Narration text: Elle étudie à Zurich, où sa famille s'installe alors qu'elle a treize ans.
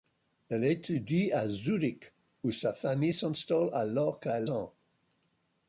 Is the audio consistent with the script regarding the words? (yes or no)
no